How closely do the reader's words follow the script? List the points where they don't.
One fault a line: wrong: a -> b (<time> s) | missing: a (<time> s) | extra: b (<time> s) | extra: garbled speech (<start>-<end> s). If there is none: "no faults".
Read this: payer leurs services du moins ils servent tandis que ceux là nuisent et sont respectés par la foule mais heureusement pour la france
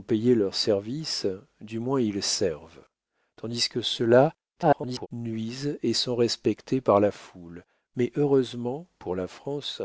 extra: garbled speech (4.6-5.1 s)